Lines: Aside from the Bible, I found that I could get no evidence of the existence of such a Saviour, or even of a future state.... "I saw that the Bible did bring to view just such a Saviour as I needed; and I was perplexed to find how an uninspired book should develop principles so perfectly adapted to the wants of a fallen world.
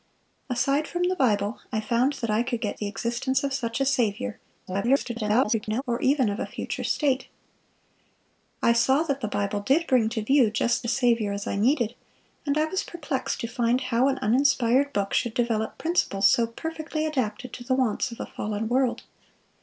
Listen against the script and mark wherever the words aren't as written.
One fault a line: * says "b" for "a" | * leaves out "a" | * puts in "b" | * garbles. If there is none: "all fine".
* leaves out "no evidence of"
* garbles
* leaves out "such"